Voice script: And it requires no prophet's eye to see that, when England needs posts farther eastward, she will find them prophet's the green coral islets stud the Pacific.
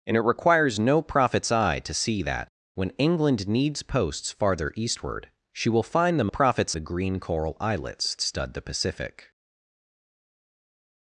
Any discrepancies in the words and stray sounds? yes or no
no